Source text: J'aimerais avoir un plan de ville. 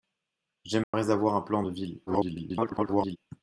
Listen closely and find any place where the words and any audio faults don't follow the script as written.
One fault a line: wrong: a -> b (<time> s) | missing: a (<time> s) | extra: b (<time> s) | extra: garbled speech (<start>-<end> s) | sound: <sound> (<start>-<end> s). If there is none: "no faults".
sound: dropout (0.8-0.9 s)
extra: garbled speech (2.1-3.2 s)